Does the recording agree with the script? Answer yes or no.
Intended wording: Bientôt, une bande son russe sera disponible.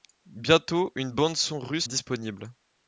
no